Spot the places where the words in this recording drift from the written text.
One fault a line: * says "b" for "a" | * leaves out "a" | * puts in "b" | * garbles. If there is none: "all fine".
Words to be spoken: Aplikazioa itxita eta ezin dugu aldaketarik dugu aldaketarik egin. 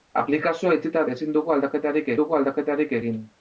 all fine